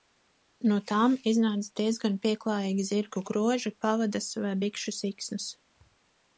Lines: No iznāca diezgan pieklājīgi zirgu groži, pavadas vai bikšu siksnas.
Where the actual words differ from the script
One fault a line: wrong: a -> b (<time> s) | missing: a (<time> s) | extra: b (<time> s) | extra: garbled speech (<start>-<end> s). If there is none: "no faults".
extra: tām (0.9 s)